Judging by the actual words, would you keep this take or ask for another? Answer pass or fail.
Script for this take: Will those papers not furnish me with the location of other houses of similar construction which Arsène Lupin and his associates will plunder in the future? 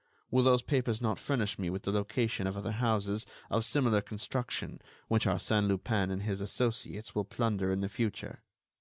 pass